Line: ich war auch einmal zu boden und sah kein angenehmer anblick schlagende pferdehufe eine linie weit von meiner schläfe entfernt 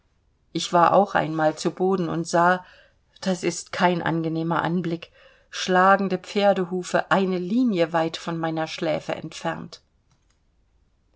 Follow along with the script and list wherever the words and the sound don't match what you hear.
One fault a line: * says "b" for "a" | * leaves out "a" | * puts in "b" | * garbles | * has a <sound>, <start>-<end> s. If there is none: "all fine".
* puts in "das ist"